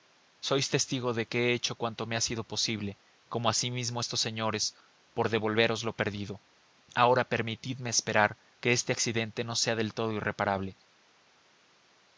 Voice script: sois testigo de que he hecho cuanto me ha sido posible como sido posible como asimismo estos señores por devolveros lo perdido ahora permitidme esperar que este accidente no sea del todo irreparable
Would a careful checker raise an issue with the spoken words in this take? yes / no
yes